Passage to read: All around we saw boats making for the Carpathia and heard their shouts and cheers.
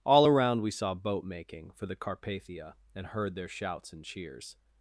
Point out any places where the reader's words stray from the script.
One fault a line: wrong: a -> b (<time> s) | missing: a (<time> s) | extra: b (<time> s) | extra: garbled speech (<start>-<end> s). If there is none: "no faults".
wrong: boats -> boat (0.9 s)